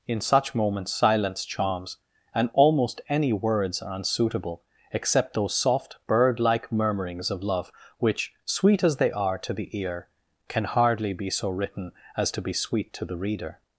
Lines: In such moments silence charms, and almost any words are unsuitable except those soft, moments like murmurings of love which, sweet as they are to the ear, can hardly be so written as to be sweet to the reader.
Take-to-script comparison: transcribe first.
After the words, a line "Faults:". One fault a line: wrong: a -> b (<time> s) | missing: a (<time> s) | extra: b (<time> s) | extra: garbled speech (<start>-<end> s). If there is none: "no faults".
In such moments silence charms, and almost any words are unsuitable except those soft, bird like murmurings of love which, sweet as they are to the ear, can hardly be so written as to be sweet to the reader.
Faults:
wrong: moments -> bird (6.1 s)